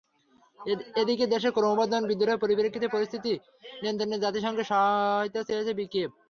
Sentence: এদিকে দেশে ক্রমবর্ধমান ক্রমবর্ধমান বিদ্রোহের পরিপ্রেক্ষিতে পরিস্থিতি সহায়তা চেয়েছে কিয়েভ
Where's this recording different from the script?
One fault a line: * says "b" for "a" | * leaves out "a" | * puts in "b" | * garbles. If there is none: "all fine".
* leaves out "ক্রমবর্ধমান"
* puts in "নিয়ন্ত্রণে জাতিসংঘের"